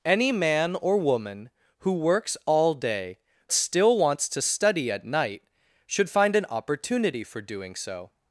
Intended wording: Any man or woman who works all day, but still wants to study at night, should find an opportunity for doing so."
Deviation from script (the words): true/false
true